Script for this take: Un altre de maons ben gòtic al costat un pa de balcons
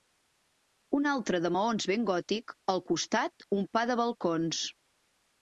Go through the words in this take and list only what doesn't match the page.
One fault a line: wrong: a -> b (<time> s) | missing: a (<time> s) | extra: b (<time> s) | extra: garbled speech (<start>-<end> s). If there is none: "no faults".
no faults